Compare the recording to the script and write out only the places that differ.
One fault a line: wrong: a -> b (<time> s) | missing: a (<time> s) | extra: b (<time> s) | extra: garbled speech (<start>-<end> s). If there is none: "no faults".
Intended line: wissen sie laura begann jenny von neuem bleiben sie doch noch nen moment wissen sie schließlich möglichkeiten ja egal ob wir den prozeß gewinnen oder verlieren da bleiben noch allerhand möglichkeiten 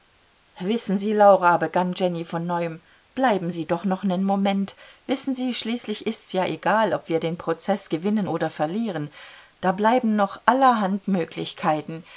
wrong: möglichkeiten -> ist's (6.1 s)